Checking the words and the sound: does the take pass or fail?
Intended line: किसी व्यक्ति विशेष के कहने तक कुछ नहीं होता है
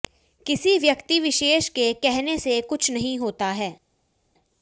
fail